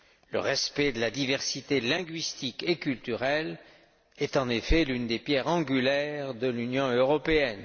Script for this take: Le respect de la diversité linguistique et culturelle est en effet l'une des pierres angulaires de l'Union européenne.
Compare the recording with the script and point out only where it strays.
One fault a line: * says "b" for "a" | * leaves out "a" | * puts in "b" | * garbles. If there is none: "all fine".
all fine